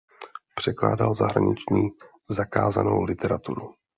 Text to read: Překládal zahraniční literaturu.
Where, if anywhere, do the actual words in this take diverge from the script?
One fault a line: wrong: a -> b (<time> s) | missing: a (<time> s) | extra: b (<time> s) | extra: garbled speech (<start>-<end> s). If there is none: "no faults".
extra: zakázanou (2.3 s)